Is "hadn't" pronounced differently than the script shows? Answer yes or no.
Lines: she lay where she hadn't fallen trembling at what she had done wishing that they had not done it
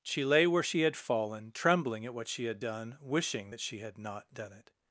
yes